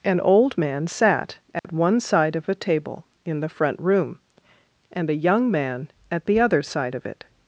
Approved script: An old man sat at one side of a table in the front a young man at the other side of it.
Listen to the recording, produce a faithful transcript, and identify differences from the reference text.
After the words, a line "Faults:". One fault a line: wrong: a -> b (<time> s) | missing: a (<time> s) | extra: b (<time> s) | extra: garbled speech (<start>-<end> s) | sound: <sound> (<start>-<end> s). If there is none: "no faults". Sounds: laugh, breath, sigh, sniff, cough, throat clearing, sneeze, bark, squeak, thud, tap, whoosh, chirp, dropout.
An old man sat at one side of a table in the front room, and a young man at the other side of it.
Faults:
sound: dropout (1.6-1.6 s)
extra: room and (3.8 s)